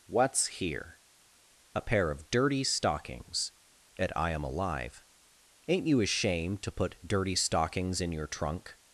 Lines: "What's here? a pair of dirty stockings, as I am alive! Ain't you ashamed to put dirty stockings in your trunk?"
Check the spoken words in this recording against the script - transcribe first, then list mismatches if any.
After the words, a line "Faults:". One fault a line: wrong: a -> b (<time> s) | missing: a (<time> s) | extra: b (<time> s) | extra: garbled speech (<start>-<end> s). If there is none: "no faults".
"What's here? a pair of dirty stockings, at I am alive! Ain't you ashamed to put dirty stockings in your trunk?"
Faults:
wrong: as -> at (4.0 s)